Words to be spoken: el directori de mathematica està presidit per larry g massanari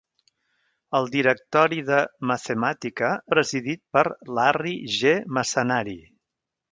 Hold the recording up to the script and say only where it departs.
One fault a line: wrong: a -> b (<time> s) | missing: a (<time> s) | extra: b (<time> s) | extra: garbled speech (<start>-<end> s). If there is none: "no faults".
missing: està (3.1 s)